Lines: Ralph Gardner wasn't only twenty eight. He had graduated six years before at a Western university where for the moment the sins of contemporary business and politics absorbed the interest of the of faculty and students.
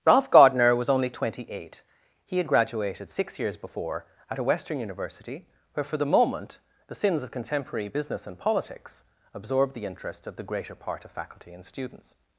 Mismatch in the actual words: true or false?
true